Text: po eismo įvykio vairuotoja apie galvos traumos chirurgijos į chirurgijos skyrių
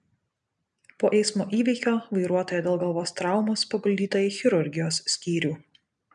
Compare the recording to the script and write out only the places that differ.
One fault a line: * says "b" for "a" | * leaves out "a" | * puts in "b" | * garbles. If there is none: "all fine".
* says "dėl" for "apie"
* says "paguldyta" for "chirurgijos"